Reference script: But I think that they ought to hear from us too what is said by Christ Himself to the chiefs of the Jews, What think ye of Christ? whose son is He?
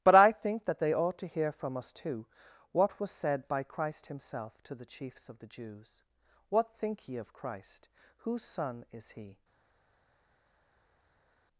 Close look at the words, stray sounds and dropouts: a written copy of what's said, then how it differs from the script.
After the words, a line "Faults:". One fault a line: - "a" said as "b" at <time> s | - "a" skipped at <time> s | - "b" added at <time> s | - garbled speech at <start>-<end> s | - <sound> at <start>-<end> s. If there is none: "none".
But I think that they ought to hear from us too what was said by Christ Himself to the chiefs of the Jews, What think ye of Christ? whose son is He?
Faults:
- "is" said as "was" at 3.0 s